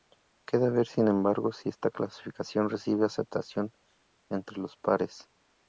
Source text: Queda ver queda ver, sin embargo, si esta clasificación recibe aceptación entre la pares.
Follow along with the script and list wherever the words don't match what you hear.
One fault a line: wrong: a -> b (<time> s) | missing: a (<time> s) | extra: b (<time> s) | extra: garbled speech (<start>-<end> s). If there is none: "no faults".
missing: queda ver (0.9 s)
wrong: la -> los (4.6 s)